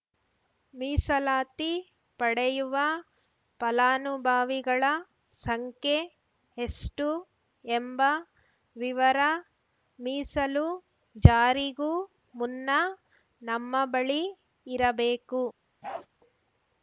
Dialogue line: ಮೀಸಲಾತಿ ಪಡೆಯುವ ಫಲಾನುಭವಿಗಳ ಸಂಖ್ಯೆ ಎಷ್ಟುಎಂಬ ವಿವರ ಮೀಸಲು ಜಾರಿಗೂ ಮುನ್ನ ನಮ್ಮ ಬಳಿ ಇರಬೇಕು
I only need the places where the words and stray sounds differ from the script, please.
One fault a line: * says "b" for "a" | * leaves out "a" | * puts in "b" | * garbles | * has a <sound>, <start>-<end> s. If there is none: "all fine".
* has a bark, 15.8-16.1 s